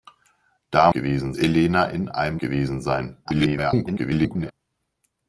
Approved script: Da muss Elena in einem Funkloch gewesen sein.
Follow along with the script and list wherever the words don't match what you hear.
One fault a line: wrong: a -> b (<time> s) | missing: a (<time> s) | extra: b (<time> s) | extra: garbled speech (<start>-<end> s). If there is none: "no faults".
wrong: muss -> gewesen (0.9 s)
missing: Funkloch (2.4 s)
extra: garbled speech (3.2-4.5 s)